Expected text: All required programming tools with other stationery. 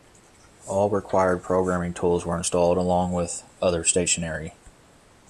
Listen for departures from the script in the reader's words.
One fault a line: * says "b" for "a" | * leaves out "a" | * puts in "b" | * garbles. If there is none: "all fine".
* puts in "were installed along"